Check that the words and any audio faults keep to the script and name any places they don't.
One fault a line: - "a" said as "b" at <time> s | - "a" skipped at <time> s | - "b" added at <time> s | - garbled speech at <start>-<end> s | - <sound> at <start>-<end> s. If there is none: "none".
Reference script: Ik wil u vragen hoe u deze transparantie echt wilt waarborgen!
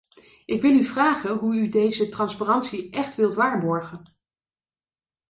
none